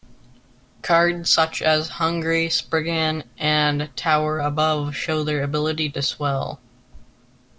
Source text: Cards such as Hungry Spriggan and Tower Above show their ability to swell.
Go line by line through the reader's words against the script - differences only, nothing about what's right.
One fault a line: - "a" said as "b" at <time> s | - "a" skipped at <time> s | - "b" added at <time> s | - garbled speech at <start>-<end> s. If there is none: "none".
none